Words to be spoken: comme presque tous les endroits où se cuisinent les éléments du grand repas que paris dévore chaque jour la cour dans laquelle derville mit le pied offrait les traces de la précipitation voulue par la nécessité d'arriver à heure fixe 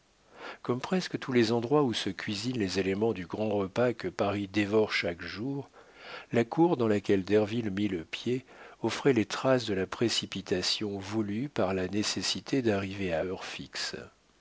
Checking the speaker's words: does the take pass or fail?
pass